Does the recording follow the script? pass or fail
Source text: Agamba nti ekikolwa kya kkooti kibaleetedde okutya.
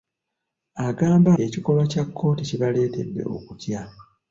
fail